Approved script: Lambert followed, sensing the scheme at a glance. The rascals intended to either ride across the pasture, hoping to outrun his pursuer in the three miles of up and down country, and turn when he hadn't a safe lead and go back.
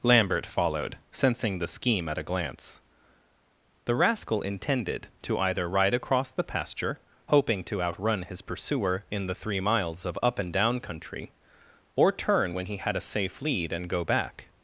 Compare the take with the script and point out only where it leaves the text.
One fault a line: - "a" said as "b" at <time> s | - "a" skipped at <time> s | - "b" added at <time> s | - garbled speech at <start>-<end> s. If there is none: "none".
- "rascals" said as "rascal" at 4.0 s
- "and" said as "or" at 11.9 s
- "hadn't" said as "had" at 12.8 s